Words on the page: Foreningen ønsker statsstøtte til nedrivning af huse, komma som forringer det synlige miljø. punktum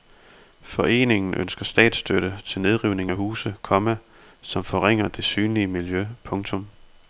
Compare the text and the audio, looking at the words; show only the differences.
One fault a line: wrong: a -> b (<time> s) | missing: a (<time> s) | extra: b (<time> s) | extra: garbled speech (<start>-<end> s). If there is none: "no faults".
no faults